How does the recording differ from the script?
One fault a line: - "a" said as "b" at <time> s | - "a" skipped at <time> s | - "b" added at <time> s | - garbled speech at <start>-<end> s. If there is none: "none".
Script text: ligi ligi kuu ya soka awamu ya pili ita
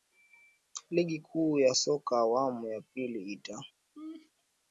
- "ligi" skipped at 1.2 s